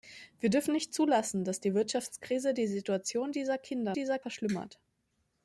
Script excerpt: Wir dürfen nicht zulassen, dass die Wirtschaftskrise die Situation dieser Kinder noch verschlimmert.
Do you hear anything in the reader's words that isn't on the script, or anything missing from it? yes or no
yes